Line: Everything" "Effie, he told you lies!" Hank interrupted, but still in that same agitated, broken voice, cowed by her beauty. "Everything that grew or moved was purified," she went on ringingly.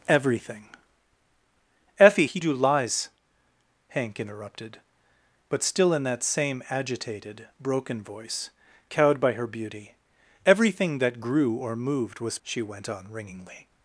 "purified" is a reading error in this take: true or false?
true